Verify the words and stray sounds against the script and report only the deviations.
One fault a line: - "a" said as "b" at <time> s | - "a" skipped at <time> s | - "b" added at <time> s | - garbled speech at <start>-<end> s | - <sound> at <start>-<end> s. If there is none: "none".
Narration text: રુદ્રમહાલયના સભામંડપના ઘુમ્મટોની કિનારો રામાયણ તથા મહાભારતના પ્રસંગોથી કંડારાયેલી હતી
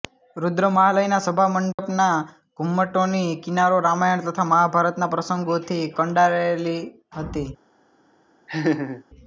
- dropout at 1.7-1.8 s
- laugh at 8.5-9.0 s